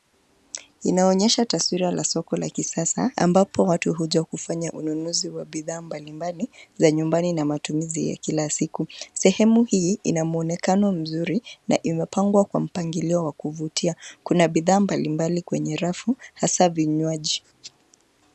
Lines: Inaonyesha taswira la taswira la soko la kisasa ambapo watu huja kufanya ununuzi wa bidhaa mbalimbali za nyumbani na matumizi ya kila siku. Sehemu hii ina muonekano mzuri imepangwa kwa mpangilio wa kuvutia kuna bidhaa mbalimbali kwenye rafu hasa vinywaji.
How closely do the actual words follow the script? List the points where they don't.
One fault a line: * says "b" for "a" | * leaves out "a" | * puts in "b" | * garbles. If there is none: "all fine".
* leaves out "taswira la"
* puts in "na"